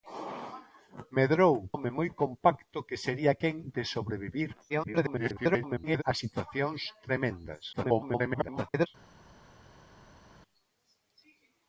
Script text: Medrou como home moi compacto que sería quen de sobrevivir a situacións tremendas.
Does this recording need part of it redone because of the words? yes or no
yes